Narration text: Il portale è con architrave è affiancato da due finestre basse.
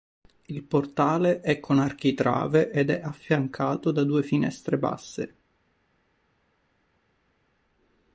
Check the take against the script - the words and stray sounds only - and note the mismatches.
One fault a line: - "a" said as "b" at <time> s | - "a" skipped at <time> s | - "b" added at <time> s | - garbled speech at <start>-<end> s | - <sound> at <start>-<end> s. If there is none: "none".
- "ed" added at 2.7 s